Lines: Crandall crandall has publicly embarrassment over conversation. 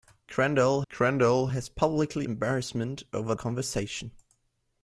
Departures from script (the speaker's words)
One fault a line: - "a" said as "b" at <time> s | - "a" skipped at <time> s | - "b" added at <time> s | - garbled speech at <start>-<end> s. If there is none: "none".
none